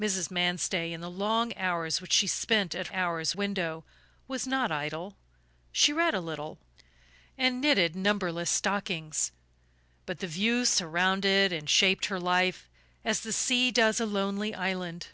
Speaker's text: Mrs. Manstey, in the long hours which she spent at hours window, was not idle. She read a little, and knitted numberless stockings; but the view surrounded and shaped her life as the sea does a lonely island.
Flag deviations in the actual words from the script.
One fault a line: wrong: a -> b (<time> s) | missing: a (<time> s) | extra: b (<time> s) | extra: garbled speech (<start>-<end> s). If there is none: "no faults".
no faults